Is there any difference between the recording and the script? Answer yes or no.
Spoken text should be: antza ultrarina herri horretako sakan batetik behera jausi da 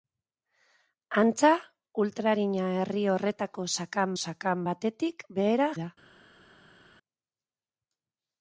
yes